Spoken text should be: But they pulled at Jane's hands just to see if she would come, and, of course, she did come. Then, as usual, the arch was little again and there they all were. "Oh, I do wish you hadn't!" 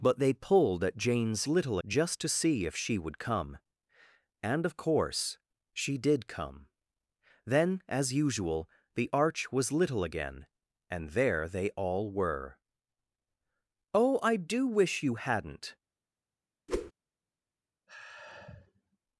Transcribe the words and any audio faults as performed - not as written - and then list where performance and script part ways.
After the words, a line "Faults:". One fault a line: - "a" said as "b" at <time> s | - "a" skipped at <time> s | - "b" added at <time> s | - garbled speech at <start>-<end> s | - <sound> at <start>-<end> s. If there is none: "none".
But they pulled at Jane's little just to see if she would come, and, of course, she did come. Then, as usual, the arch was little again and there they all were. "Oh, I do wish you hadn't!"
Faults:
- "hands" said as "little" at 1.5 s
- whoosh at 16.7-16.9 s
- sigh at 17.9-19.0 s